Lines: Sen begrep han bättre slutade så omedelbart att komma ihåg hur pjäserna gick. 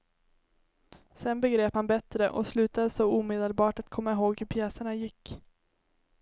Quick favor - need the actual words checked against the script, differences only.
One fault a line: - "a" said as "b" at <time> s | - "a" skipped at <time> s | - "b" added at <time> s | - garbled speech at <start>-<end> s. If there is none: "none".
- "och" added at 2.3 s